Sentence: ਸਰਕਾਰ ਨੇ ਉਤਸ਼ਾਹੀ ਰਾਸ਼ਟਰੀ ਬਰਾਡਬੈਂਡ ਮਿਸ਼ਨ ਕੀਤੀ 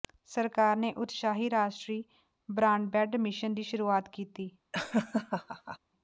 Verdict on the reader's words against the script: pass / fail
fail